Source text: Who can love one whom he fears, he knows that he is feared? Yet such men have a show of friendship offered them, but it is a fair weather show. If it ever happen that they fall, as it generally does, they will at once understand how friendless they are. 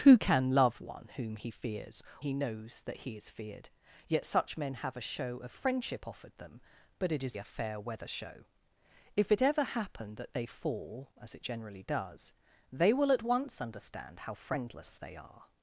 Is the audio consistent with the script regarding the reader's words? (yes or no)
yes